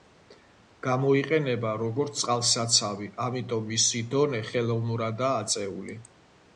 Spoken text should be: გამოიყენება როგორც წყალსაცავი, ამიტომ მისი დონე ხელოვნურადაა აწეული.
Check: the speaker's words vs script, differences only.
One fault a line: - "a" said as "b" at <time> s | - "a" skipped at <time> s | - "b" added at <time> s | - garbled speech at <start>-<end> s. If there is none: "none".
none